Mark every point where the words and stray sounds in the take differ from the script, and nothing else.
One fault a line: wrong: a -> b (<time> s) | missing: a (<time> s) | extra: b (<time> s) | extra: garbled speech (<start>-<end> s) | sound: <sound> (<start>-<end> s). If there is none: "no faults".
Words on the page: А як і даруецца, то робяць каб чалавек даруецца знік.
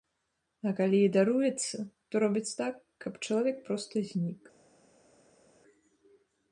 wrong: як -> калі (0.8 s)
extra: так (2.6 s)
wrong: даруецца -> проста (3.7 s)